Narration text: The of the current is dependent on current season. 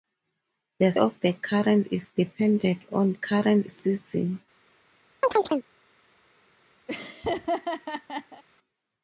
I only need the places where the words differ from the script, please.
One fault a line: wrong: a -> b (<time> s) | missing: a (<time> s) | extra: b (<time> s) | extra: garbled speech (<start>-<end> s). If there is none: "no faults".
no faults